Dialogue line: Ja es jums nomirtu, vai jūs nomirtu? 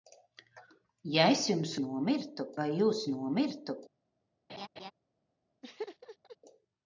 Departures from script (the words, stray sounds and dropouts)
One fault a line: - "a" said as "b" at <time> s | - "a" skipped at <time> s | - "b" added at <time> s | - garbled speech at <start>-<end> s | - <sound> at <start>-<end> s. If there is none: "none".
- laugh at 4.5-4.9 s
- laugh at 5.6-6.4 s